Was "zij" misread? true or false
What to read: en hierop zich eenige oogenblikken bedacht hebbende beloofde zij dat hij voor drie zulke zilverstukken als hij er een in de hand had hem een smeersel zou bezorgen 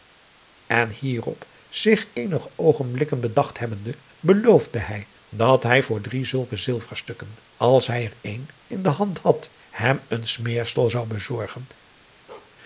true